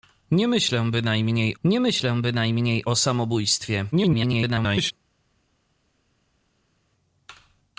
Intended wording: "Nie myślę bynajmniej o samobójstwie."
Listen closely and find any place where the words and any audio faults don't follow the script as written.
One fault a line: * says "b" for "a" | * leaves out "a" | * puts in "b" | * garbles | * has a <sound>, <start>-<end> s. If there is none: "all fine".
* puts in "nie myślę bynajmniej"
* garbles